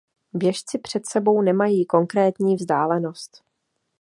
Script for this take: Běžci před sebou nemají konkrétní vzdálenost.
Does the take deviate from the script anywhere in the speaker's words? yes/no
no